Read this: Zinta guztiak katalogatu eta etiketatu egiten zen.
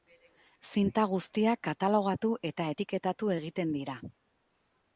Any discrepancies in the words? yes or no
yes